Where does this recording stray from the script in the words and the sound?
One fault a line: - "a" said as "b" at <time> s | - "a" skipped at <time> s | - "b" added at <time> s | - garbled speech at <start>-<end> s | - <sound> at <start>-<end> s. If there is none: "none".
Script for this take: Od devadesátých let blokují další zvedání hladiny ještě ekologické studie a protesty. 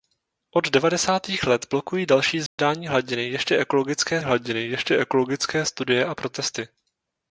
- dropout at 2.5-2.6 s
- "hladiny ještě ekologické" added at 4.2 s